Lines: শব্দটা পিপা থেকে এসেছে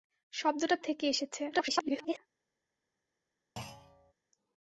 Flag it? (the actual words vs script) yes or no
yes